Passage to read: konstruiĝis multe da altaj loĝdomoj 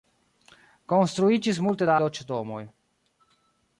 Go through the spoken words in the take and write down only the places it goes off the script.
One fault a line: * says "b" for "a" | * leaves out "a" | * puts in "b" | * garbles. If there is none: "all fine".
* leaves out "altaj"